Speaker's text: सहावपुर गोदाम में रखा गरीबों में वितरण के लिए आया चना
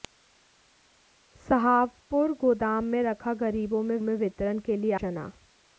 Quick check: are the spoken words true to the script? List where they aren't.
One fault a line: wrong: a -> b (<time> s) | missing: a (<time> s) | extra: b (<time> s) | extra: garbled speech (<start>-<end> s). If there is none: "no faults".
extra: में (4.0 s)
missing: आया (4.9 s)